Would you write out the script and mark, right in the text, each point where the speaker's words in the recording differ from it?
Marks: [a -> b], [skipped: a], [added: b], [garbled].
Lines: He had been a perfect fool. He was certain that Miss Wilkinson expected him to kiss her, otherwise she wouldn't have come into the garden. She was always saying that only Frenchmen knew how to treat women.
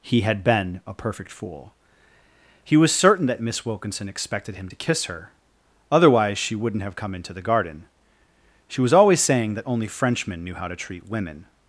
He had been a perfect fool. He was certain that Miss Wilkinson expected him to kiss her, otherwise she wouldn't have come into the garden. She was always saying that only Frenchmen knew how to treat women.